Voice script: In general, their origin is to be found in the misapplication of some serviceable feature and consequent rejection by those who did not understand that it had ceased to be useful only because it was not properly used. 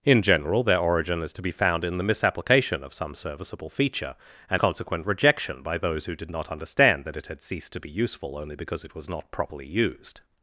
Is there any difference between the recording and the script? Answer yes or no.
no